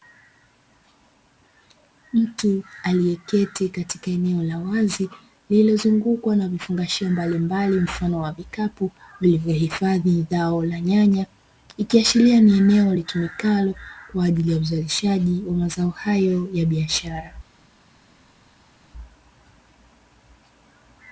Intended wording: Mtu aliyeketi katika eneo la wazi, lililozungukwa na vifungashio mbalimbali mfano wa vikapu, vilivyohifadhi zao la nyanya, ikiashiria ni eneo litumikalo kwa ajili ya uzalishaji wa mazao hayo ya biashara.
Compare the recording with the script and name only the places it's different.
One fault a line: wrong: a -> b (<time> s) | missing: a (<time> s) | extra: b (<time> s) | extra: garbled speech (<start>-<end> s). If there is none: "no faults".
no faults